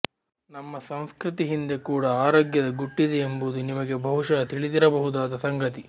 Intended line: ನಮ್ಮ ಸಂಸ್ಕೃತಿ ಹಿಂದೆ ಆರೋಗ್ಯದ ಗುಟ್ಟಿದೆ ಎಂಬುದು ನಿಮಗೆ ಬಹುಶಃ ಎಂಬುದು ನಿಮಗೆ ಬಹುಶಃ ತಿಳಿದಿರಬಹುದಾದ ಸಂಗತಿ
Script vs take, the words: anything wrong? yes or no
yes